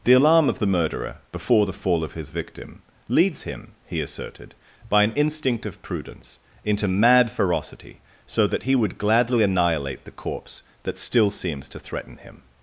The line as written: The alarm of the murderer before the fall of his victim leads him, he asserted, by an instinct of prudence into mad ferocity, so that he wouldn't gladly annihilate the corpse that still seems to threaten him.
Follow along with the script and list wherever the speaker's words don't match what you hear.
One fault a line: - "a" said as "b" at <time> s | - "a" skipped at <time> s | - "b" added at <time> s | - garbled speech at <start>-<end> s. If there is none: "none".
- "wouldn't" said as "would" at 8.7 s